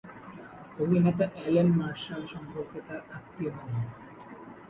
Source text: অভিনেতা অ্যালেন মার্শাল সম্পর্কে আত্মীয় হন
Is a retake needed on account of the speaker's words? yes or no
yes